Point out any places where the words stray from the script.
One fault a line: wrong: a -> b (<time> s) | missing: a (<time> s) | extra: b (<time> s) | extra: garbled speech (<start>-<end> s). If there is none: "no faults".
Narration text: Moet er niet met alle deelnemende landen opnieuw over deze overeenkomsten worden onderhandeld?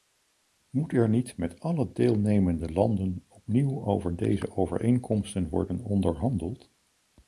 no faults